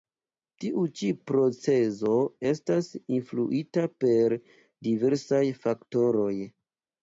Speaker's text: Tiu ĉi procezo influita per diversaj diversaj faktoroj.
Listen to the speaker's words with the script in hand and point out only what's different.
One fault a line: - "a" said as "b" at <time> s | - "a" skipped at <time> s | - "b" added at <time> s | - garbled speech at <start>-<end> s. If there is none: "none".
- "estas" added at 2.5 s
- "diversaj" skipped at 5.4 s